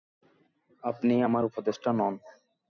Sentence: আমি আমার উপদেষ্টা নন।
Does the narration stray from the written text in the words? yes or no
yes